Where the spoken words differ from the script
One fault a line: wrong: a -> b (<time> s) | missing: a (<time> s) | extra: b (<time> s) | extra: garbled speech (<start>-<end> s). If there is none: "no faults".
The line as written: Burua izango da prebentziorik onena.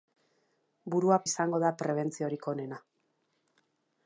no faults